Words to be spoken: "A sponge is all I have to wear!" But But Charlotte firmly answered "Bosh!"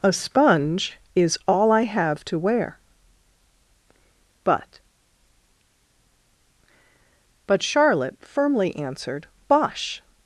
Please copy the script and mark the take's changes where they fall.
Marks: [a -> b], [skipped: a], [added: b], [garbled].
"A sponge is all I have to wear!" But But Charlotte firmly answered "Bosh!"